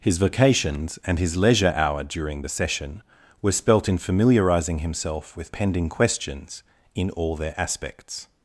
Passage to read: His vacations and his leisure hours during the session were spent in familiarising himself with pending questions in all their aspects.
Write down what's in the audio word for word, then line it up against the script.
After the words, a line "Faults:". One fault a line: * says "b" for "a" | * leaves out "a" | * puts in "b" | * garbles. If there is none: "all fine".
His vacations and his leisure hour during the session were spelt in familiarising himself with pending questions in all their aspects.
Faults:
* says "hour" for "hours"
* says "spelt" for "spent"